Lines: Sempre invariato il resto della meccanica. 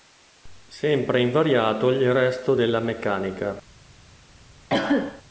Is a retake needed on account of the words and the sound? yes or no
yes